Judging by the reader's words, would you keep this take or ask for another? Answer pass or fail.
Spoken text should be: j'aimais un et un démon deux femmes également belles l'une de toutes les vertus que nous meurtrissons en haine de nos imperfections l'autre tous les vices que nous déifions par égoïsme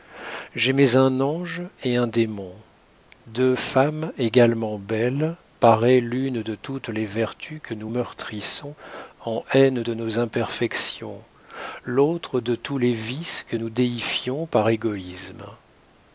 fail